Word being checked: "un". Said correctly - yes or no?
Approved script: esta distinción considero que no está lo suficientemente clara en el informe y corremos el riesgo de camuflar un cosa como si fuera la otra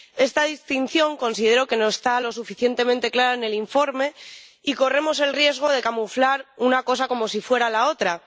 no